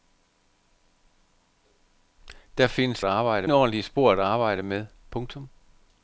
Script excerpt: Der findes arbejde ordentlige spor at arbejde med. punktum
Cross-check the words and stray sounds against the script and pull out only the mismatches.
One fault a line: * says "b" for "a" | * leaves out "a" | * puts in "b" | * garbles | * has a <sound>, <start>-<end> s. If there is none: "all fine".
all fine